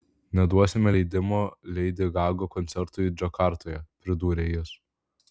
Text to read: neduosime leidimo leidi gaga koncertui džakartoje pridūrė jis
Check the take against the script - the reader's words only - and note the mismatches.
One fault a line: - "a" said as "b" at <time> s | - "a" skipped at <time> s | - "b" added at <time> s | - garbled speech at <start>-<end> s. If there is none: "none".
none